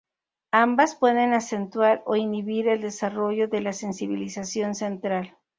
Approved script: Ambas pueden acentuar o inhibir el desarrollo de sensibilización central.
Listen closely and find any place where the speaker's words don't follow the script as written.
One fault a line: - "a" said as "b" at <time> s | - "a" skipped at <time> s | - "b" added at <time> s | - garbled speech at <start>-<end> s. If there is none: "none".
- "la" added at 3.6 s